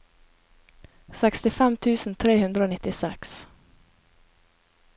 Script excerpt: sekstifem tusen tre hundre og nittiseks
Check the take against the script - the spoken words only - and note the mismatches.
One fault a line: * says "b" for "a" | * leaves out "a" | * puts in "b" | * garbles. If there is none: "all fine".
all fine